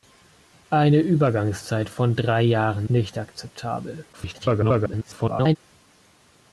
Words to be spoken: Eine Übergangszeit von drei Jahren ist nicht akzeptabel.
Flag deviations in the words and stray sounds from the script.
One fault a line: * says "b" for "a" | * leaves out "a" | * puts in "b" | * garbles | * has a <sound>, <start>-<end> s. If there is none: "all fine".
* leaves out "ist"
* garbles